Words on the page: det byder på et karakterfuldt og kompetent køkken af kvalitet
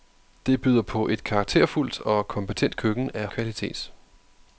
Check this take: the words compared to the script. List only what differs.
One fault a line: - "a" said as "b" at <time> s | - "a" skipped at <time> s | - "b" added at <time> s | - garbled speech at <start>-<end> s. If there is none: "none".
none